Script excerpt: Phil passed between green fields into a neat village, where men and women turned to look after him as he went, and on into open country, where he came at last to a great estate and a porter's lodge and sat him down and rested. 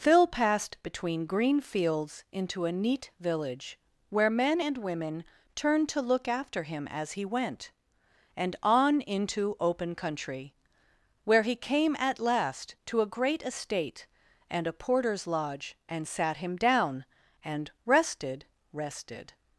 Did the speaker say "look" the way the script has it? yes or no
yes